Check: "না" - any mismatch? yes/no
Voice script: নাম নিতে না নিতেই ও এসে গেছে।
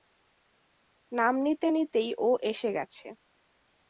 yes